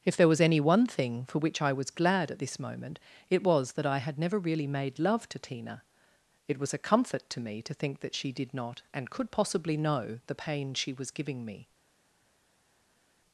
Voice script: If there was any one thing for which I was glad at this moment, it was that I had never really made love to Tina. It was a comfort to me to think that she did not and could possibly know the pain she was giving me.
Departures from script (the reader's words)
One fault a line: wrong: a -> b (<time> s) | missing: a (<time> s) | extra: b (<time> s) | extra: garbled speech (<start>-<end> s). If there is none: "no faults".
no faults